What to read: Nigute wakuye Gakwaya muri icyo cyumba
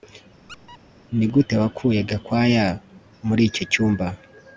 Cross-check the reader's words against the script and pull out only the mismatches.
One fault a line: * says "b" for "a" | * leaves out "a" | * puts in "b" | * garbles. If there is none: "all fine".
all fine